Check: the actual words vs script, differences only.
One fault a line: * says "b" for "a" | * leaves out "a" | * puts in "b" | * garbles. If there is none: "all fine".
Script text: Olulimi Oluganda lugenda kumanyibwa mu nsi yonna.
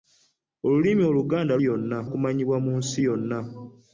* says "yonna" for "lugenda"